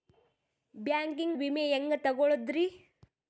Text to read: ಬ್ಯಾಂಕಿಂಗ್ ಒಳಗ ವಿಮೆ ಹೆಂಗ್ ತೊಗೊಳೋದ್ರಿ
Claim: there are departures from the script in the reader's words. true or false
true